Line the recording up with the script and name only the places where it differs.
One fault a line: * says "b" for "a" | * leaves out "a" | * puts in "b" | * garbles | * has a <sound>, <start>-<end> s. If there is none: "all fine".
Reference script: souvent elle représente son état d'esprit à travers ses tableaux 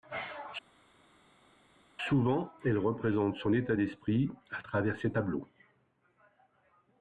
all fine